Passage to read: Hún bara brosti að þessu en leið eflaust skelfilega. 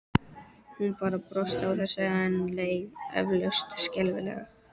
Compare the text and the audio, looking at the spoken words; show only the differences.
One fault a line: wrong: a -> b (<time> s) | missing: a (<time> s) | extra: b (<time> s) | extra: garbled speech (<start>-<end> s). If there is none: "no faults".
no faults